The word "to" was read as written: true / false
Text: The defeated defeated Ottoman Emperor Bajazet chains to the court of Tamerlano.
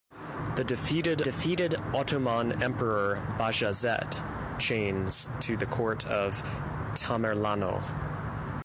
true